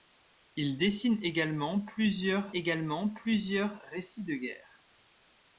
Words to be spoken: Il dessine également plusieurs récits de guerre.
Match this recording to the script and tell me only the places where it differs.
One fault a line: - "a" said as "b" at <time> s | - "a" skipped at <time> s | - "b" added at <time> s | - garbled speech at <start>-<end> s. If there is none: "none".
- "également plusieurs" added at 2.5 s